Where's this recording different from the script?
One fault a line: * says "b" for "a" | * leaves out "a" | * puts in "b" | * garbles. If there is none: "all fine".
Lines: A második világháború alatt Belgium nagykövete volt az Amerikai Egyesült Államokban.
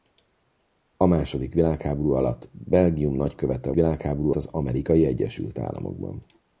* says "világháború" for "volt"